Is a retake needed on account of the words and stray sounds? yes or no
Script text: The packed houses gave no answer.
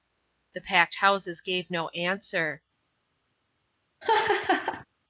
yes